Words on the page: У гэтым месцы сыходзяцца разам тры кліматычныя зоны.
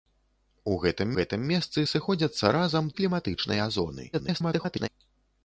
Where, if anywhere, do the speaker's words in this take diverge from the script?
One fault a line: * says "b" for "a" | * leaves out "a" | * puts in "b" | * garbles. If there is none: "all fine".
* puts in "гэтым"
* leaves out "тры"
* garbles